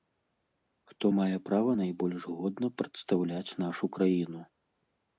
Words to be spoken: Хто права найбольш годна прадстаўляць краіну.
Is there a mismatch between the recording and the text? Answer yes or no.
yes